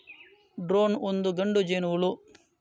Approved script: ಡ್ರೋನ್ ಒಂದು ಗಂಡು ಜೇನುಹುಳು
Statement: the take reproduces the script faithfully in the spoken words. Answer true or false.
true